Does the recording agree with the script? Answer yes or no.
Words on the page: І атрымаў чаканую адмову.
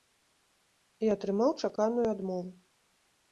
yes